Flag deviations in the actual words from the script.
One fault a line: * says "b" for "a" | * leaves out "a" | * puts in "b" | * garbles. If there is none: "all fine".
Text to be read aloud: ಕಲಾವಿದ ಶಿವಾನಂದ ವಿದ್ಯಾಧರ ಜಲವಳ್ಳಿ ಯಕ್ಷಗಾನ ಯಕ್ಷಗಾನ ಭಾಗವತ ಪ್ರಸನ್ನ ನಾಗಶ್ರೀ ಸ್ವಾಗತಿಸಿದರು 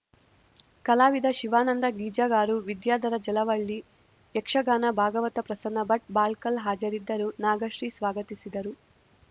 * puts in "ಗೀಜಗಾರು"
* leaves out "ಯಕ್ಷಗಾನ"
* puts in "ಭಟ್ ಬಾಳ್ಕಲ್ ಹಾಜರಿದ್ದರು"